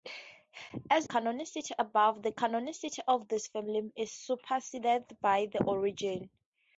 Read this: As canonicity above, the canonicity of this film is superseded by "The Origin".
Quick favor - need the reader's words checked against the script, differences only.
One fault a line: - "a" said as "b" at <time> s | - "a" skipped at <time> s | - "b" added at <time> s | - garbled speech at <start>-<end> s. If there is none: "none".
none